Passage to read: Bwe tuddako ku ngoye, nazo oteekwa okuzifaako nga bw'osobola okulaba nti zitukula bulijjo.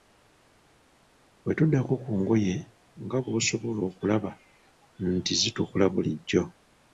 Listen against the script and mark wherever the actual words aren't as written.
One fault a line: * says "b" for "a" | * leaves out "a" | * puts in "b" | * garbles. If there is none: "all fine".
* leaves out "nazo oteekwa okuzifaako"